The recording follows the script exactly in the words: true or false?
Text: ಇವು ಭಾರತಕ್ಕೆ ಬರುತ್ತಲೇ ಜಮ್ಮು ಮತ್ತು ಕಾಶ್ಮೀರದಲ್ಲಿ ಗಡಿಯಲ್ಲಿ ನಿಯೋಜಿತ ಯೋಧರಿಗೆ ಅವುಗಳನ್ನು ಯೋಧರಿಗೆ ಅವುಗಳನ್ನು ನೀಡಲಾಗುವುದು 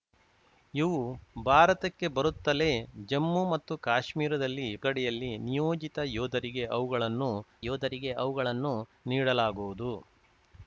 true